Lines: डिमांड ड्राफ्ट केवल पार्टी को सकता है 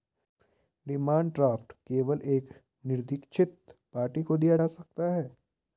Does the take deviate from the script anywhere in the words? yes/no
yes